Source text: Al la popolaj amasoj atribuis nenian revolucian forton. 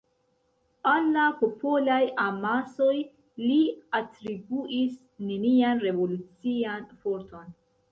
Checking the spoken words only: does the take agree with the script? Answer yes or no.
no